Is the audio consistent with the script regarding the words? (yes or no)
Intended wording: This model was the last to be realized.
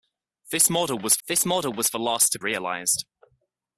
no